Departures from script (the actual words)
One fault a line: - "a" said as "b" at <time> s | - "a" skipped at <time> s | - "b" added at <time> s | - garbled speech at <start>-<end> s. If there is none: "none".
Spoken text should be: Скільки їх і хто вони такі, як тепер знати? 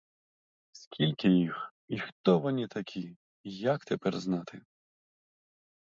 none